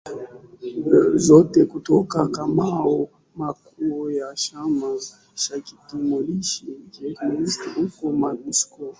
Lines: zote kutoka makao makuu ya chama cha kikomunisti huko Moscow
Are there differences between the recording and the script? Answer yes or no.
no